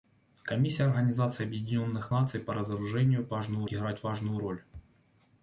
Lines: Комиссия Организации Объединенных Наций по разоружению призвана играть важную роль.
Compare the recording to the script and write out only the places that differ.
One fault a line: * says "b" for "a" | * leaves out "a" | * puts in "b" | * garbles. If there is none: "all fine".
* says "важную" for "призвана"